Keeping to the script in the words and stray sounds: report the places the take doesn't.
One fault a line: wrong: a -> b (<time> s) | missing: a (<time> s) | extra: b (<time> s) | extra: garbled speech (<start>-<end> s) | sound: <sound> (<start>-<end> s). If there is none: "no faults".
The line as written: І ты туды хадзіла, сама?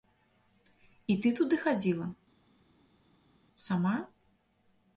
no faults